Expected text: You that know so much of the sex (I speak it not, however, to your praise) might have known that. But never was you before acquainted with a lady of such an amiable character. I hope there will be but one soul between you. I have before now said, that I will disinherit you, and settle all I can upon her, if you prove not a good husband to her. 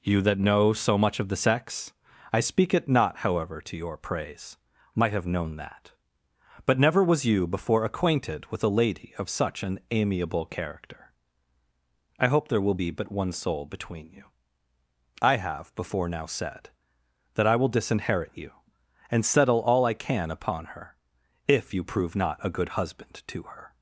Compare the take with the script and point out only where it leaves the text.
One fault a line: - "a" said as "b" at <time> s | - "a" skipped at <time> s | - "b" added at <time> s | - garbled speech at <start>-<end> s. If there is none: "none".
none